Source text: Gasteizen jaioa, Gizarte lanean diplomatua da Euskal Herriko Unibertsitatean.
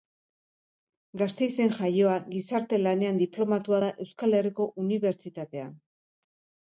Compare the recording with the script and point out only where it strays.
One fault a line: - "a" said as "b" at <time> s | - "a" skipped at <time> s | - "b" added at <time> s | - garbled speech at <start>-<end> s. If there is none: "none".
none